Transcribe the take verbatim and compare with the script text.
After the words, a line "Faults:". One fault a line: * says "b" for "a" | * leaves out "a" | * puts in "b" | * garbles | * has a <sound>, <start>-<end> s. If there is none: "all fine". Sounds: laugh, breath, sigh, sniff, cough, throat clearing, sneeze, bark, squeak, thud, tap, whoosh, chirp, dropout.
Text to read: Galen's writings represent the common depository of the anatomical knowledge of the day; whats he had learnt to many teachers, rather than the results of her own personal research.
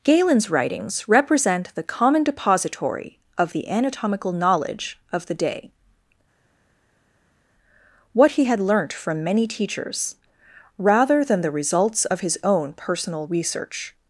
Galen's writings represent the common depository of the anatomical knowledge of the day; what he had learnt from many teachers, rather than the results of his own personal research.
Faults:
* says "what" for "whats"
* says "from" for "to"
* says "his" for "her"